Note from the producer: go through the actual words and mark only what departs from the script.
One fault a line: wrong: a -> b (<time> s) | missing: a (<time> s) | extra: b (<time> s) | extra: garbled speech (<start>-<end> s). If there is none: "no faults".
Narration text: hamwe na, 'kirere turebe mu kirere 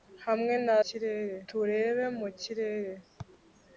no faults